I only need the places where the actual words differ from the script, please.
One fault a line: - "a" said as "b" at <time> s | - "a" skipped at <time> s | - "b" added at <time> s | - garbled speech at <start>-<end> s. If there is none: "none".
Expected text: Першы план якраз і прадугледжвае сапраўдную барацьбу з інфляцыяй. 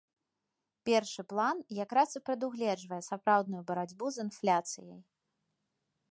none